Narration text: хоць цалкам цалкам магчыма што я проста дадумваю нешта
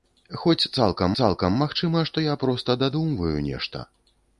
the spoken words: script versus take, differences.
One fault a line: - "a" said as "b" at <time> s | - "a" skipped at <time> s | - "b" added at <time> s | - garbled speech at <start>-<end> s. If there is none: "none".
none